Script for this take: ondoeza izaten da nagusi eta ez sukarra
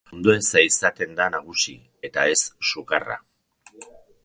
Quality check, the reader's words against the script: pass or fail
pass